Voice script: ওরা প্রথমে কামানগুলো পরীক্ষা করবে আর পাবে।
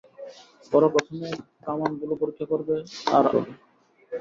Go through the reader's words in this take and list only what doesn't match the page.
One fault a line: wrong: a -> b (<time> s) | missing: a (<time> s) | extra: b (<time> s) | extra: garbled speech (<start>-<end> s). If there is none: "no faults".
no faults